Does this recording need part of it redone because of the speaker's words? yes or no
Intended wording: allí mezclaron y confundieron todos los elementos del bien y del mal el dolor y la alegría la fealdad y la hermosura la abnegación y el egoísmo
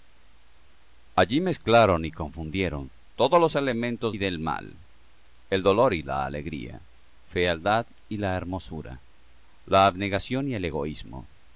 yes